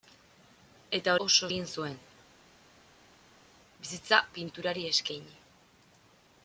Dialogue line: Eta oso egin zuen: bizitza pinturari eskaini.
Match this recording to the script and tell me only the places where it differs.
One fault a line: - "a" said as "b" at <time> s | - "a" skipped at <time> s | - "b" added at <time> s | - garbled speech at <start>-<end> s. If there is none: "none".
none